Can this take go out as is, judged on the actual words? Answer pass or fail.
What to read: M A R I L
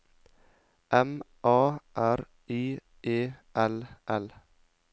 fail